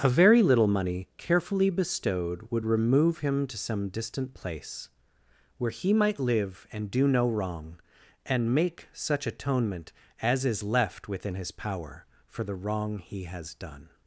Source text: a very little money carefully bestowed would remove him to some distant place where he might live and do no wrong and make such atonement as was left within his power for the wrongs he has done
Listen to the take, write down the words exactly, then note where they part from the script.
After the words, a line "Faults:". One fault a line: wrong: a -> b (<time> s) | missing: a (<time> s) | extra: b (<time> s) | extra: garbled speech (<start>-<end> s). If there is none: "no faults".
a very little money carefully bestowed would remove him to some distant place where he might live and do no wrong and make such atonement as is left within his power for the wrong he has done
Faults:
wrong: was -> is (10.5 s)
wrong: wrongs -> wrong (12.5 s)